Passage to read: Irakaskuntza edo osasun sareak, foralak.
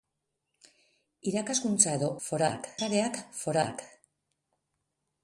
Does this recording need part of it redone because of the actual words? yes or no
yes